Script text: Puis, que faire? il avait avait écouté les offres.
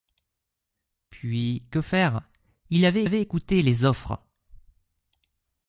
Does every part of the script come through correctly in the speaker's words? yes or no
yes